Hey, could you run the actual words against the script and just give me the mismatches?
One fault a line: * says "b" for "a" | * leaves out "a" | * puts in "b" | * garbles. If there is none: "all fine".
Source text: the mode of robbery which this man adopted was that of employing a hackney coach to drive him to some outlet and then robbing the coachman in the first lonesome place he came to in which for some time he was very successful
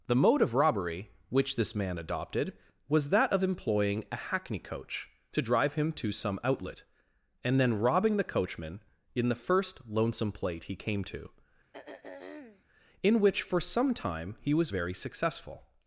* says "plate" for "place"